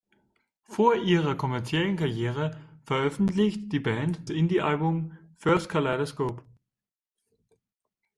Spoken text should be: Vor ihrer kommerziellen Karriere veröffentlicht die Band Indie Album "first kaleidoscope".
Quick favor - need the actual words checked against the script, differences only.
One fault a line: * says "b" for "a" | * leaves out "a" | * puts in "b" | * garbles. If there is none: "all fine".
all fine